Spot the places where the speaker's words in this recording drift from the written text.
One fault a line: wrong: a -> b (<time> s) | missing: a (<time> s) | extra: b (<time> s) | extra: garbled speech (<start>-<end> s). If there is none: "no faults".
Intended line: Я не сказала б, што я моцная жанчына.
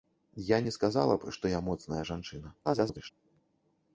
extra: garbled speech (2.6-3.1 s)